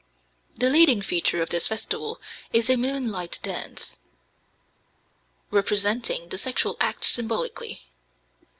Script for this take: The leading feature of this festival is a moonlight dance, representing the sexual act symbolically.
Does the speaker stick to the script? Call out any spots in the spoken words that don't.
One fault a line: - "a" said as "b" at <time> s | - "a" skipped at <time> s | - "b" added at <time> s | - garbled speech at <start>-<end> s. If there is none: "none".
none